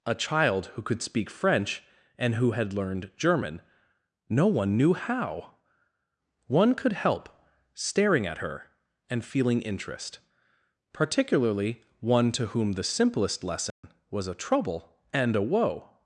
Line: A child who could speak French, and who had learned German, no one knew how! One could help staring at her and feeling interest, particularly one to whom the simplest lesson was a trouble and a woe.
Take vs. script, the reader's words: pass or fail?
pass